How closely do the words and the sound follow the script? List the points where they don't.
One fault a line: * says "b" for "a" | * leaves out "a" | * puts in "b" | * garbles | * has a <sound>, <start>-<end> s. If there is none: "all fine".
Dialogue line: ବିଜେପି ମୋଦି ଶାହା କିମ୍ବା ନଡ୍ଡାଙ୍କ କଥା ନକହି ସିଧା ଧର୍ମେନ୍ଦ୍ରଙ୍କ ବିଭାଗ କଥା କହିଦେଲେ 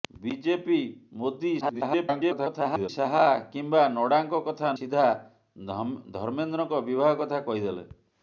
* garbles
* leaves out "ନକହି"